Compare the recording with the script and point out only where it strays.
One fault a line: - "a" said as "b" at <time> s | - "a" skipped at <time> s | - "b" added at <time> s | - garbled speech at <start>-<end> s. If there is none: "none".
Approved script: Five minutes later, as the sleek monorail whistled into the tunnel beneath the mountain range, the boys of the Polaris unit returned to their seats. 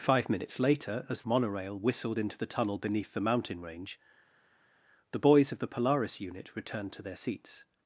- "the sleek" skipped at 1.2 s